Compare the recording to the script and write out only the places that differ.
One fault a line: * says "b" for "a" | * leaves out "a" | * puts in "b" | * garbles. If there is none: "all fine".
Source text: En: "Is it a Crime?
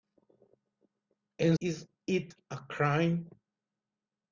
all fine